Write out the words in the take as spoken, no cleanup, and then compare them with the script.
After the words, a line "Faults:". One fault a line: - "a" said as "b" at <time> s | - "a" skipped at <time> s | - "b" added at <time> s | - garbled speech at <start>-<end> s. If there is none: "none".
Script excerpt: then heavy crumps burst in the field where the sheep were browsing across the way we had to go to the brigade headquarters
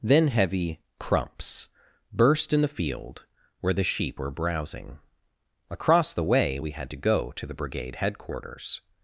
then heavy crumps burst in the field where the sheep were browsing across the way we had to go to the brigade headquarters
Faults:
none